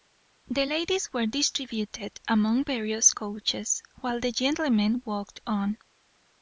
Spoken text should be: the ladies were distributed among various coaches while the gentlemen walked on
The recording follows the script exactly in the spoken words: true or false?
true